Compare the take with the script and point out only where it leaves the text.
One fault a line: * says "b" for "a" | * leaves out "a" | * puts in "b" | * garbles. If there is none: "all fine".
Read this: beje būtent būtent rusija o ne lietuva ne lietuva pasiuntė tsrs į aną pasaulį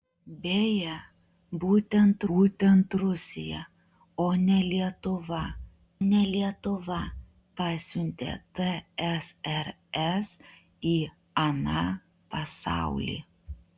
all fine